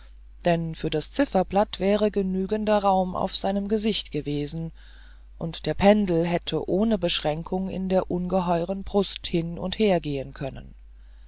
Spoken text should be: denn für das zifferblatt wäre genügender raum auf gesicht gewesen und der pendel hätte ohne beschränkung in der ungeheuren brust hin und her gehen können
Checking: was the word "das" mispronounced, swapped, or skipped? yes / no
no